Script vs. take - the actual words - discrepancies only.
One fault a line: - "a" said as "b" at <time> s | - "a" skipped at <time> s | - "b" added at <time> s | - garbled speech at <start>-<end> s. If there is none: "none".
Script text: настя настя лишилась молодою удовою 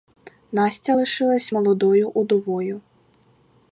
- "настя" skipped at 0.9 s